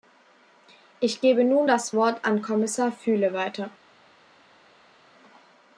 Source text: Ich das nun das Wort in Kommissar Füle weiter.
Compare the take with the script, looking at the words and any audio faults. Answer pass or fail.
fail